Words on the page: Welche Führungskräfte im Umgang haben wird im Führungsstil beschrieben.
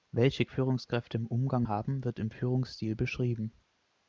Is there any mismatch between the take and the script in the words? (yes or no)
no